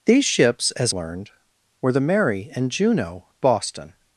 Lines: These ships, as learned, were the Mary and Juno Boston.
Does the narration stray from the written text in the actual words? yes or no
no